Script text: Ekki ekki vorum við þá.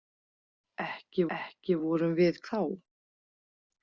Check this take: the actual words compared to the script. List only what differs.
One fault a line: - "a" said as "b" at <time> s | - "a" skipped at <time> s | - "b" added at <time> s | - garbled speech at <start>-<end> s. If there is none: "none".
none